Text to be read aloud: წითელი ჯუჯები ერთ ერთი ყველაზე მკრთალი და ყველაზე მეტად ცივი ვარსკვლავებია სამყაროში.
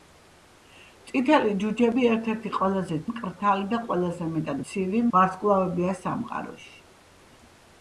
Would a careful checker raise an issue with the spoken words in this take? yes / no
no